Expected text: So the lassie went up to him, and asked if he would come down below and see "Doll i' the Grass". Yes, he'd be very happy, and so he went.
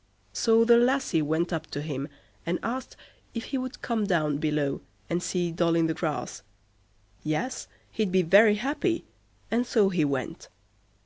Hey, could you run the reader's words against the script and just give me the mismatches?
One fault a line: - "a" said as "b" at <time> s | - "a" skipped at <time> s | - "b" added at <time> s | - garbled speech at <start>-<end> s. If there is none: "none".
none